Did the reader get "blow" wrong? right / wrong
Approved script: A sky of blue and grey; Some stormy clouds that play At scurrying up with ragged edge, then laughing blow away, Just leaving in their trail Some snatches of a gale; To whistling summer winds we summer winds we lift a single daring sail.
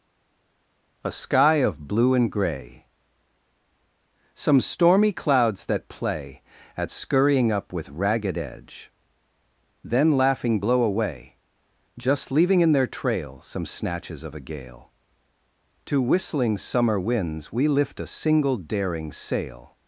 right